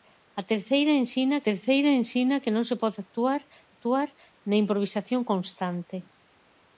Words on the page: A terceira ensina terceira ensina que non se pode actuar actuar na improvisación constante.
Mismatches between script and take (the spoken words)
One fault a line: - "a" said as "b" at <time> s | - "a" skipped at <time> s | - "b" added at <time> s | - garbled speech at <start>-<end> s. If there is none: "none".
none